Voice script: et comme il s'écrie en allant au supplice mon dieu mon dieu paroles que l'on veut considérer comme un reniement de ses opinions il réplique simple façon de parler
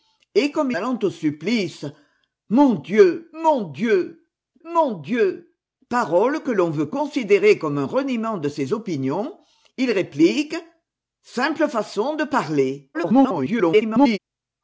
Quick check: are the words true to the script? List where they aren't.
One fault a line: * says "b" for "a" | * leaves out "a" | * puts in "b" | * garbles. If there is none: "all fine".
* leaves out "il s'écrie en"
* puts in "mon dieu"
* garbles